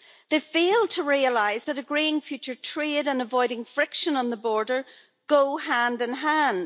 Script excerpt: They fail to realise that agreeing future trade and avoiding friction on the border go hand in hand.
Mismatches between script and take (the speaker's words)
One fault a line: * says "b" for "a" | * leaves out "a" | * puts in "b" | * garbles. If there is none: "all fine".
all fine